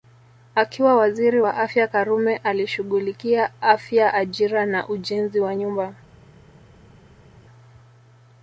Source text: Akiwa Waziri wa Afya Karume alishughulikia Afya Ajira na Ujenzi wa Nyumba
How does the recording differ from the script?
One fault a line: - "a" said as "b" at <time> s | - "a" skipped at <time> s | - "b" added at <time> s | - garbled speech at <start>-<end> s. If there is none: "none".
none